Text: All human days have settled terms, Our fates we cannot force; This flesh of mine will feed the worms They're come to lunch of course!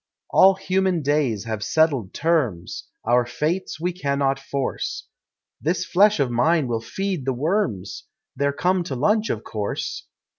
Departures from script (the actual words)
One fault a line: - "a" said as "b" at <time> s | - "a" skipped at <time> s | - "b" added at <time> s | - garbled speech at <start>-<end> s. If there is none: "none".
none